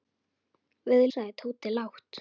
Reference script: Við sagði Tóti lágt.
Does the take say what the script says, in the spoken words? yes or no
yes